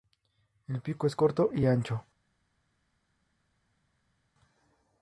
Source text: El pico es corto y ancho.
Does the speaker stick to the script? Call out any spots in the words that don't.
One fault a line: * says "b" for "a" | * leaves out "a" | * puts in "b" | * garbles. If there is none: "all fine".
all fine